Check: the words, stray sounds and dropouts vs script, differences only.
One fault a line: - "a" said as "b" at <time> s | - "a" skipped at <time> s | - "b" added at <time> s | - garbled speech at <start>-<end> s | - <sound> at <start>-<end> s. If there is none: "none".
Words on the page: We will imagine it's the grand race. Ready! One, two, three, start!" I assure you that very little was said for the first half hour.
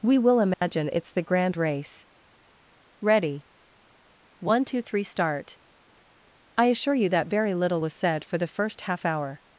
- dropout at 0.5-0.6 s